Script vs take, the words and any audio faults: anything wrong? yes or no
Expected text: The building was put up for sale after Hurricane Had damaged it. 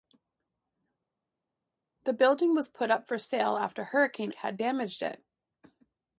no